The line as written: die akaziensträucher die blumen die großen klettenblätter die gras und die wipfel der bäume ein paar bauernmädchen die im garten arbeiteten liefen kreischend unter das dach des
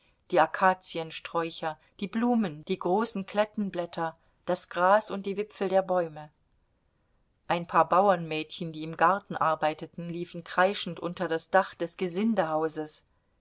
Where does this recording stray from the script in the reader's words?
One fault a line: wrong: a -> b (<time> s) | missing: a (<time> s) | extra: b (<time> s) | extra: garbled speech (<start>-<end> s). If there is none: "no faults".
wrong: die -> das (4.5 s)